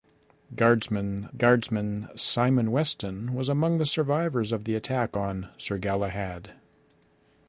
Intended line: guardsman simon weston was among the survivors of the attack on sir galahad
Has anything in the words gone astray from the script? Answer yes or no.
yes